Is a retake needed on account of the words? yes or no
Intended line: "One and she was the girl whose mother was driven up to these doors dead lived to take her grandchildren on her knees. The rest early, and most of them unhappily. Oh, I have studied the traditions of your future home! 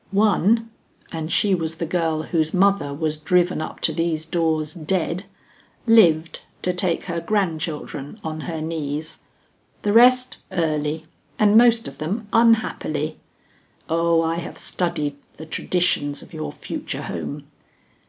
no